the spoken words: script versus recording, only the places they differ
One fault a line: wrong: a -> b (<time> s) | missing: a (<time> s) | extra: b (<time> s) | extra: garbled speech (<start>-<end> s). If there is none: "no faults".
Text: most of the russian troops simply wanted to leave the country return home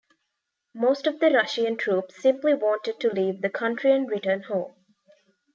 extra: and (3.9 s)